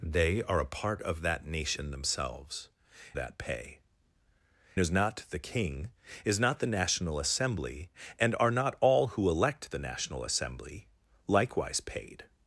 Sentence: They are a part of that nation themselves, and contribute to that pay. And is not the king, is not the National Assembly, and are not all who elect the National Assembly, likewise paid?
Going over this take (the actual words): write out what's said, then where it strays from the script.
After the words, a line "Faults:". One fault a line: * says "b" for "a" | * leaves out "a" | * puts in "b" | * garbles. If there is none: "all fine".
They are a part of that nation themselves, that pay. Is not the king, is not the National Assembly, and are not all who elect the National Assembly, likewise paid?
Faults:
* leaves out "and contribute to"
* leaves out "And"